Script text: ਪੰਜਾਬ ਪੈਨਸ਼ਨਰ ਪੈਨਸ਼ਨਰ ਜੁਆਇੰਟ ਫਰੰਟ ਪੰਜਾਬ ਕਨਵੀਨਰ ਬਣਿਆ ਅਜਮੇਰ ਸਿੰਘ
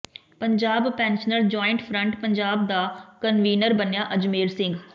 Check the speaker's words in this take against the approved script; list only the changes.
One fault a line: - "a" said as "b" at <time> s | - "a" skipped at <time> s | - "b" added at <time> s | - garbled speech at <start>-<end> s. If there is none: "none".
- "ਪੈਨਸ਼ਨਰ" skipped at 1.4 s
- "ਦਾ" added at 2.7 s